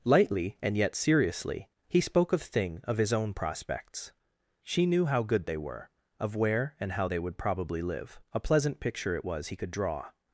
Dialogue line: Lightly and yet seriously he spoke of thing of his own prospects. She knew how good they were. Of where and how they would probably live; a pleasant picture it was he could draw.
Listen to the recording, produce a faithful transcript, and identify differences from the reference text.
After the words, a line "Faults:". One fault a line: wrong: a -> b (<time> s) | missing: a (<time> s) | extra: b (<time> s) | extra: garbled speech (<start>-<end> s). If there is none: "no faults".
Lightly and yet seriously he spoke of thing of his own prospects. She knew how good they were. Of where and how they would probably live; a pleasant picture it was he could draw.
Faults:
no faults